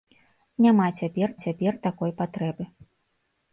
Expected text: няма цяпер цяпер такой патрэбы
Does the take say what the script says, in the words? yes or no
yes